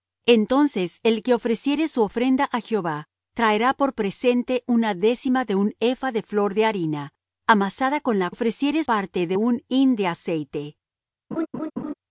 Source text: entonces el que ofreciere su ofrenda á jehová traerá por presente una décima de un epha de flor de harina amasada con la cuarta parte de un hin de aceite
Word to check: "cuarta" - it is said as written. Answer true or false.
false